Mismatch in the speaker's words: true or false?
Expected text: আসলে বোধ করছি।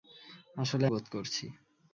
false